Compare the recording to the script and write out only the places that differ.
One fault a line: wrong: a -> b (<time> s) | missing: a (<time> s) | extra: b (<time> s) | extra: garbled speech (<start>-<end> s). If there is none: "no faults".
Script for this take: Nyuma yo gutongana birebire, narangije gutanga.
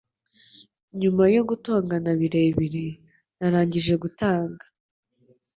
no faults